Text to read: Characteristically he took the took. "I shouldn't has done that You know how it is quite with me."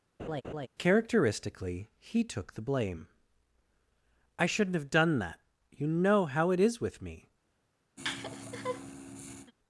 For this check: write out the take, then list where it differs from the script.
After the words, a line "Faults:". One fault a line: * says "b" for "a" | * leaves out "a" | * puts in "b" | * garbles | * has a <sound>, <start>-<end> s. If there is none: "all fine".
Characteristically he took the blame. "I shouldn't have done that You know how it is with me."
Faults:
* has a laugh, 0.2-0.7 s
* says "blame" for "took"
* says "have" for "has"
* leaves out "quite"
* has a laugh, 8.0-9.5 s